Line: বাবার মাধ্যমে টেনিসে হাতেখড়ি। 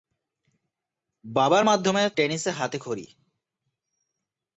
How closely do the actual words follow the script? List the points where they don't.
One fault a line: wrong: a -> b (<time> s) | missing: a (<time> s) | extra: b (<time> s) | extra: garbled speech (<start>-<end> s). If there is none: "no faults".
no faults